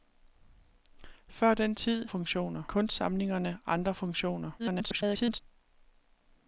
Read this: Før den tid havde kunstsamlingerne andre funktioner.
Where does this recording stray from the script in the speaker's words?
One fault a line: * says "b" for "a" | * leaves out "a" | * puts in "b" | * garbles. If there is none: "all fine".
* says "funktioner" for "havde"
* garbles